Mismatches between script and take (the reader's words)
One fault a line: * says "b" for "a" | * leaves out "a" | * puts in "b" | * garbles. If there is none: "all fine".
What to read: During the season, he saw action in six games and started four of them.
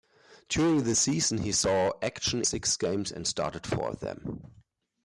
* leaves out "in"